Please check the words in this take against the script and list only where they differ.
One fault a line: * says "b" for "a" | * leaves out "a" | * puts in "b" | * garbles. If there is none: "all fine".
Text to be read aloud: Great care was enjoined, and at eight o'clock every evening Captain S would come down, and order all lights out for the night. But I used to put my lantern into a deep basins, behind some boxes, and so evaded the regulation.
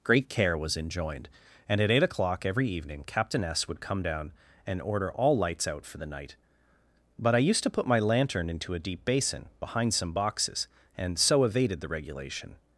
* says "basin" for "basins"